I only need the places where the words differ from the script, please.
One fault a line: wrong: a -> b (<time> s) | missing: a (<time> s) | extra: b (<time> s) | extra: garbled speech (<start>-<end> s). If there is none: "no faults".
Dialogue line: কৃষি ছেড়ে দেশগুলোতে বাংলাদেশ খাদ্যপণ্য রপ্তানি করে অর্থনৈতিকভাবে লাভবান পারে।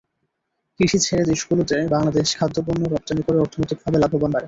no faults